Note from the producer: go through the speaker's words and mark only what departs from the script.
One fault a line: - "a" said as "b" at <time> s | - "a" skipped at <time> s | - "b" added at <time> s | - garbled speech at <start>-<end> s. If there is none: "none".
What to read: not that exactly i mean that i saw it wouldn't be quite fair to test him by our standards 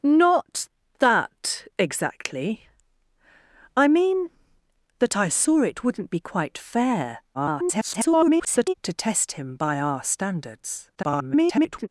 - garbled speech at 7.3-8.7 s
- garbled speech at 10.9-11.9 s